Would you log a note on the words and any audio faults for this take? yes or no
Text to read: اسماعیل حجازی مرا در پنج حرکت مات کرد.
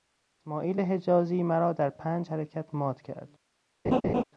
yes